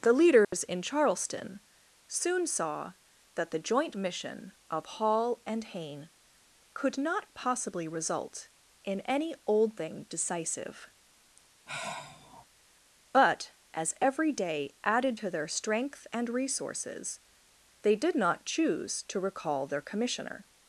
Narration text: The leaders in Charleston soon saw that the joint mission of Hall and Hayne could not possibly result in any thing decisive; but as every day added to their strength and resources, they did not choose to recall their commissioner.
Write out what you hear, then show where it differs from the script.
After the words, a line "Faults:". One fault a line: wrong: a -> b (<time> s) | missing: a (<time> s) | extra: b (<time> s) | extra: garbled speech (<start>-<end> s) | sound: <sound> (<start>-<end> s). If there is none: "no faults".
The leaders in Charleston soon saw that the joint mission of Hall and Hayne could not possibly result in any old thing decisive; but as every day added to their strength and resources, they did not choose to recall their commissioner.
Faults:
sound: dropout (0.4-0.5 s)
extra: old (9.4 s)
sound: sigh (11.7-12.5 s)